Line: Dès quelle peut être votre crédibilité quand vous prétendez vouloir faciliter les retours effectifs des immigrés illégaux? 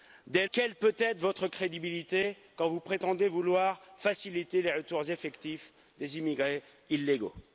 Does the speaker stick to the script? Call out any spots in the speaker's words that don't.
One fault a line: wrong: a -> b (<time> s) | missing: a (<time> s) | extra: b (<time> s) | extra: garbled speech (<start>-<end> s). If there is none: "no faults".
no faults